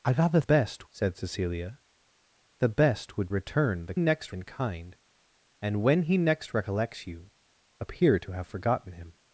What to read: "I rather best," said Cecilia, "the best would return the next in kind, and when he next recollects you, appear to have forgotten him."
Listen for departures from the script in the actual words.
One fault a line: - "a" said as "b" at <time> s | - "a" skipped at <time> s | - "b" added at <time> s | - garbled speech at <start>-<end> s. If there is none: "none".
none